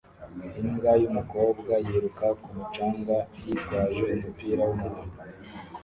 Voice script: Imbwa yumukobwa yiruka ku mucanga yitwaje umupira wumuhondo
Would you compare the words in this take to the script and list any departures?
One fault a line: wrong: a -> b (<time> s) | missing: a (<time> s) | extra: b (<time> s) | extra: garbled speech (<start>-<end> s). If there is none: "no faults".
no faults